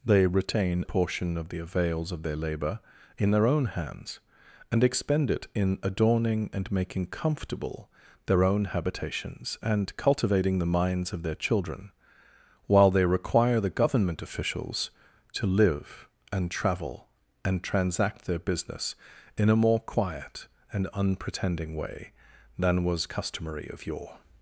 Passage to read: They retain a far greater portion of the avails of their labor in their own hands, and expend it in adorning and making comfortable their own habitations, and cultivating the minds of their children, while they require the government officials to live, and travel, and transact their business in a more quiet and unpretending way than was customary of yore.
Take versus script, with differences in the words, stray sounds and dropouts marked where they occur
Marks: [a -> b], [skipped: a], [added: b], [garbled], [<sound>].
They retain [skipped: a far greater] portion of the avails of their labor in their own hands, and expend it in adorning and making comfortable their own habitations, and cultivating the minds of their children, while they require the government officials to live, and travel, and transact their business in a more quiet and unpretending way than was customary of yore.